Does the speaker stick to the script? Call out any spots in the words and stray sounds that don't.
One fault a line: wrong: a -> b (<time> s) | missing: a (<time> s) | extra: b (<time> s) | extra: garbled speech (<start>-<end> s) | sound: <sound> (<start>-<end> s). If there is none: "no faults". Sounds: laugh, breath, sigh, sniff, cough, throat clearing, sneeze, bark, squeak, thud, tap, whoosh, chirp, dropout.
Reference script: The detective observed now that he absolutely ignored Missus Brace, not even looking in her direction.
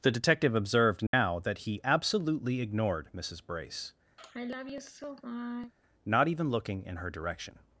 sound: dropout (1.1-1.1 s)
sound: sigh (4.2-5.7 s)